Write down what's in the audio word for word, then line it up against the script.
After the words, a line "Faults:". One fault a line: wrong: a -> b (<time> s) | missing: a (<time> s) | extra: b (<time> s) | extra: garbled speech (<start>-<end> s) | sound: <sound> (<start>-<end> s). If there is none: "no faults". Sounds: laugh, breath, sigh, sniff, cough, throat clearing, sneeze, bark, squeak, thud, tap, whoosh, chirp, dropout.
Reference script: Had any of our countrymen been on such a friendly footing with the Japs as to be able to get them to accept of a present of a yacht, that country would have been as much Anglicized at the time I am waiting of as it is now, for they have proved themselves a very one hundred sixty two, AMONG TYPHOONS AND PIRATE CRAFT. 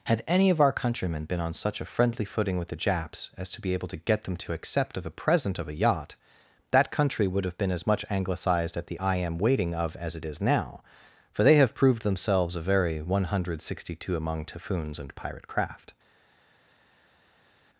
Had any of our countrymen been on such a friendly footing with the Japs as to be able to get them to accept of a present of a yacht, that country would have been as much Anglicized at the I am waiting of as it is now, for they have proved themselves a very one hundred sixty two, AMONG TYPHOONS AND PIRATE CRAFT.
Faults:
missing: time (9.0 s)